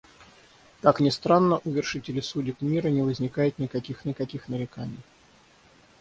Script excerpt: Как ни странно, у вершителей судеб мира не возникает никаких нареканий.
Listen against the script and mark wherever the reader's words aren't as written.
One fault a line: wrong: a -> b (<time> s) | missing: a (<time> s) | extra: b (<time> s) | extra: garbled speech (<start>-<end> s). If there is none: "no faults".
extra: никаких (4.1 s)